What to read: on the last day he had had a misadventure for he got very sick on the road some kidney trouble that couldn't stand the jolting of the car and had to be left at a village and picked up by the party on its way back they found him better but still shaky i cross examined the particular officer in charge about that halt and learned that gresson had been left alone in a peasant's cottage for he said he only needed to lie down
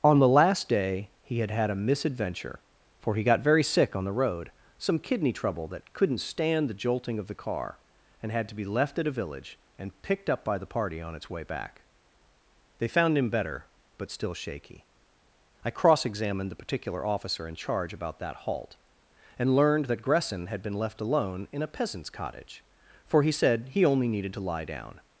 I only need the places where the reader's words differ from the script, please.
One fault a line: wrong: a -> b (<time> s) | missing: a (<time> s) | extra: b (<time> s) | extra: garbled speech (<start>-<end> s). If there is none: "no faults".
no faults